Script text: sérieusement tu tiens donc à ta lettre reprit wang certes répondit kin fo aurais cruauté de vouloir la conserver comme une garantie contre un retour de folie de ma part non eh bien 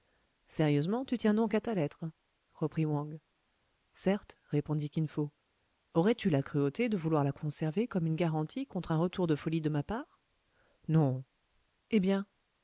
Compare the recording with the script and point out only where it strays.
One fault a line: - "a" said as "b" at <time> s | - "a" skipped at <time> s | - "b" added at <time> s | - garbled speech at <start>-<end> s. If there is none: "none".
- "tu la" added at 6.2 s